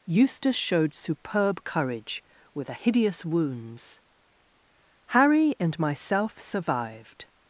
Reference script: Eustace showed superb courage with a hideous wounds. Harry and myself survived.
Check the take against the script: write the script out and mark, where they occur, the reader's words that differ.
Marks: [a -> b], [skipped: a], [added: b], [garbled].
Eustace showed superb courage with a hideous wounds. Harry and myself survived.